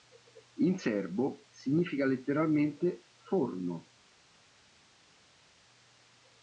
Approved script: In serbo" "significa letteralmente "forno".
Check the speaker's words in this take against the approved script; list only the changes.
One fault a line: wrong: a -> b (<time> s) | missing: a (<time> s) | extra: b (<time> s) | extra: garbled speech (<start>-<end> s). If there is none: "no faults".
no faults